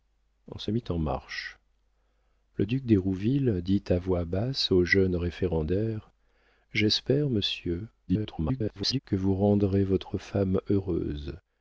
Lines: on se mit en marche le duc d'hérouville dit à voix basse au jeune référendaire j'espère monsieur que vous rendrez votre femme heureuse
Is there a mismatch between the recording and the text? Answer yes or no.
yes